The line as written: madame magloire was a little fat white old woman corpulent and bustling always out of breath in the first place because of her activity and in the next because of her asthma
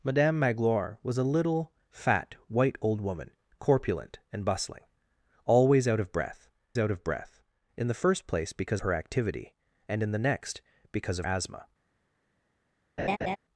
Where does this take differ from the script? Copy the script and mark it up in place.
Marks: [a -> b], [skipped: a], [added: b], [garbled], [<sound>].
madame magloire was a little fat white old woman corpulent and bustling always out of breath [added: out of breath] in the first place because [skipped: of] her activity and in the next because of [skipped: her] asthma [laugh]